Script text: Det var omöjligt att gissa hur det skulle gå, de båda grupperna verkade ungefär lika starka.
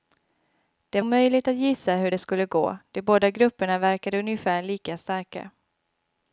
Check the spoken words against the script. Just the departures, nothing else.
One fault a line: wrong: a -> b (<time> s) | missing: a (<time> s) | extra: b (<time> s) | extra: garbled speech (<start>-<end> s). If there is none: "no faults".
missing: var (1.0 s)